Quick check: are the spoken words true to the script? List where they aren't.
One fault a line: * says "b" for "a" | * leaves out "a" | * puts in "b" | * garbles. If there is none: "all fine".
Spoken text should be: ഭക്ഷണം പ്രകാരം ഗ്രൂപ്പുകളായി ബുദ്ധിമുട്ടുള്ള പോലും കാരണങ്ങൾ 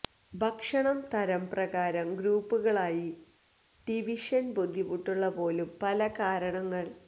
* puts in "തരം"
* puts in "ഡിവിഷൻ"
* puts in "പല"